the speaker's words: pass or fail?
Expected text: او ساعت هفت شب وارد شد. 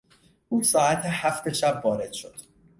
pass